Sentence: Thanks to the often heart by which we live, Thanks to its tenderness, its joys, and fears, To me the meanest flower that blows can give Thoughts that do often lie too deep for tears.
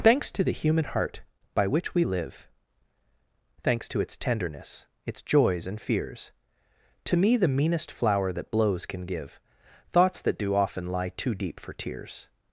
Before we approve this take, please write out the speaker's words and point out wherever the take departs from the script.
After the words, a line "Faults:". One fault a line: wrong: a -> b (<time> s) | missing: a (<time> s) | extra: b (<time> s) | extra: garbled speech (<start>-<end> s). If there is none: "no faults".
Thanks to the human heart by which we live, Thanks to its tenderness, its joys, and fears, To me the meanest flower that blows can give Thoughts that do often lie too deep for tears.
Faults:
wrong: often -> human (0.5 s)